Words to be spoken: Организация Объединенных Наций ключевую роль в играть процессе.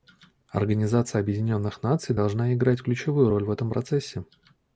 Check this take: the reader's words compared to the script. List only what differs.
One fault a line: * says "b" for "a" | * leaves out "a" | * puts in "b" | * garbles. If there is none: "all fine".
* puts in "должна играть"
* says "этом" for "играть"